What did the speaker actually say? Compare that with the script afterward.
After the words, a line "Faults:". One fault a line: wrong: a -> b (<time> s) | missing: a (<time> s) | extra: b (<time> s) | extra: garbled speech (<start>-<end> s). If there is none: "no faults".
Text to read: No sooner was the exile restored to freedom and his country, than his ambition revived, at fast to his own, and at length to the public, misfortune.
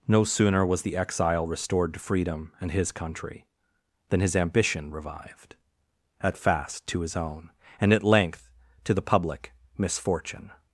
No sooner was the exile restored to freedom and his country, than his ambition revived, at fast to his own, and at length to the public, misfortune.
Faults:
no faults